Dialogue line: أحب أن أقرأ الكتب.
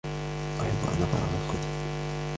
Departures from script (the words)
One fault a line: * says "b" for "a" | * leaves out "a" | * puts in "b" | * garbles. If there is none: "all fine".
all fine